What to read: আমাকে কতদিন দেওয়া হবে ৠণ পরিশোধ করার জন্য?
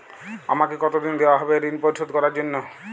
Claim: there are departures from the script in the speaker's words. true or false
false